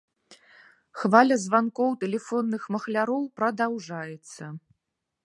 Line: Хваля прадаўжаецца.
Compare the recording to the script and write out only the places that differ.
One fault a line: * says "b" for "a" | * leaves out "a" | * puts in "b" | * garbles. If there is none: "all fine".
* puts in "званкоў тэлефонных махляроў"